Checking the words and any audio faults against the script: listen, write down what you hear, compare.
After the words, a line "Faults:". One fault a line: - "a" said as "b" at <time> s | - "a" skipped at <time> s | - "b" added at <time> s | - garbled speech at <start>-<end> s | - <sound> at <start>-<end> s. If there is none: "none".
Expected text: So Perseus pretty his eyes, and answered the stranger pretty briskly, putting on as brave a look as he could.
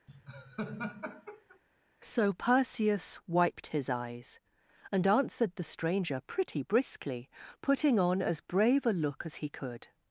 So Perseus wiped his eyes, and answered the stranger pretty briskly, putting on as brave a look as he could.
Faults:
- laugh at 0.1-1.6 s
- "pretty" said as "wiped" at 3.3 s